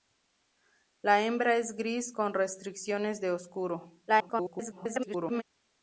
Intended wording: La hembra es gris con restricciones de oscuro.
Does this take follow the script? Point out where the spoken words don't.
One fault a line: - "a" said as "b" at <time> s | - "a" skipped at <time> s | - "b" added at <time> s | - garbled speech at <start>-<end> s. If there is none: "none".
- garbled speech at 4.1-5.4 s